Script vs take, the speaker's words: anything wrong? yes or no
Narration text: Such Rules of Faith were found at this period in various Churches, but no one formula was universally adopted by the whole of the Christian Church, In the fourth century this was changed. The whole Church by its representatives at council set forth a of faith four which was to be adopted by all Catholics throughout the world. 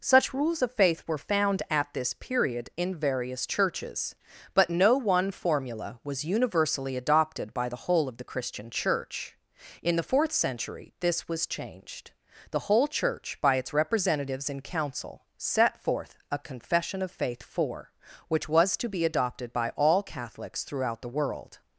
yes